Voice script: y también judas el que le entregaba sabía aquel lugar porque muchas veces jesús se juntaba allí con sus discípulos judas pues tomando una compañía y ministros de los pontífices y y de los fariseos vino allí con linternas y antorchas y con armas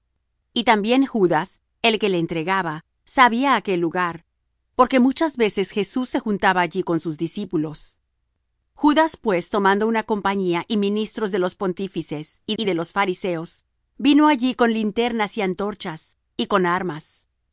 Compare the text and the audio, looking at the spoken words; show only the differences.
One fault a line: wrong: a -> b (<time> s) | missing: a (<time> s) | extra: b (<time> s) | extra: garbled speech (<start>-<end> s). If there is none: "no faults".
no faults